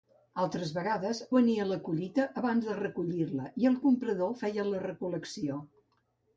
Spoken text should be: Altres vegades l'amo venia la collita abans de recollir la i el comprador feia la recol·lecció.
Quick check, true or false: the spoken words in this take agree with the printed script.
false